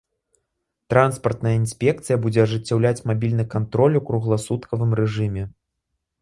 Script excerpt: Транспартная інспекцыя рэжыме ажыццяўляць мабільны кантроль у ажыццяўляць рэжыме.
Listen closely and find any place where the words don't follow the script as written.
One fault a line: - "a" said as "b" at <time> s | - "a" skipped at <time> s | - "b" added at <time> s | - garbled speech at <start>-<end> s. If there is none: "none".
- "рэжыме" said as "будзе" at 2.2 s
- "ажыццяўляць" said as "кругласуткавым" at 4.1 s